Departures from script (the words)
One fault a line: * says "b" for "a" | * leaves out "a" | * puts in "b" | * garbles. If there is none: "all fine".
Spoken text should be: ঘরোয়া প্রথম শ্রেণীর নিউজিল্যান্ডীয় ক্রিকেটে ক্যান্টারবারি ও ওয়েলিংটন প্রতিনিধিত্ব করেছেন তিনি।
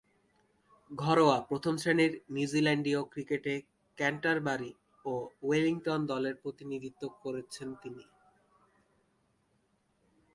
* puts in "দলের"